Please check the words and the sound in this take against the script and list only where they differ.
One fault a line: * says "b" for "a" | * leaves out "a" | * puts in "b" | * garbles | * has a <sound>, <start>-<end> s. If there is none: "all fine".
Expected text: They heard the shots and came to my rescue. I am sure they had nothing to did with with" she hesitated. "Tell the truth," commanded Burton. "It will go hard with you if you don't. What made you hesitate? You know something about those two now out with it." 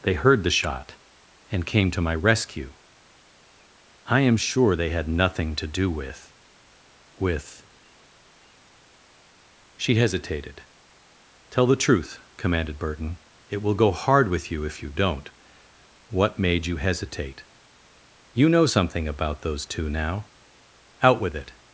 * says "shot" for "shots"
* says "do" for "did"